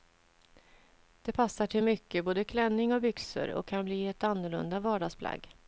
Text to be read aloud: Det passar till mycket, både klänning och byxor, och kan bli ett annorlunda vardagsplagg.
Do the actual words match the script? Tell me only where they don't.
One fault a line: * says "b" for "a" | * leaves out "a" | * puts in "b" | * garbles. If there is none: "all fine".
all fine